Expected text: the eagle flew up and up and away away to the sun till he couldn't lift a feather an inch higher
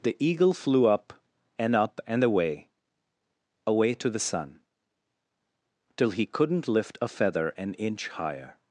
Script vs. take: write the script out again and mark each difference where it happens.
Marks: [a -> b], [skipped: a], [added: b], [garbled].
the eagle flew up and up and away away to the sun till he couldn't lift a feather an inch higher